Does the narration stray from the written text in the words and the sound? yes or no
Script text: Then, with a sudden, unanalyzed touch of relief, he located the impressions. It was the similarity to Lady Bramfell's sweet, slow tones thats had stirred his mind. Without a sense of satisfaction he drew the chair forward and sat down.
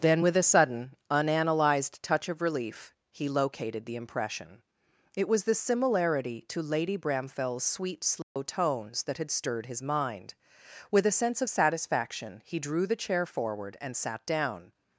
yes